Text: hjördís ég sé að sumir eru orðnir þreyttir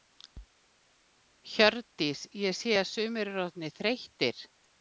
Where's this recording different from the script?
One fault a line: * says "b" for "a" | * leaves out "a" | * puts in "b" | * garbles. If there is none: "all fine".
all fine